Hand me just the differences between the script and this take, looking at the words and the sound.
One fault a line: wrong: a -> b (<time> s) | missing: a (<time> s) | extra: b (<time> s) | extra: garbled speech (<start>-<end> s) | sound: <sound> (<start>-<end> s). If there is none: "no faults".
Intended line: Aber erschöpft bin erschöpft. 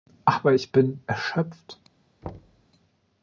wrong: erschöpft -> ich (0.5 s)
sound: thud (2.2-2.7 s)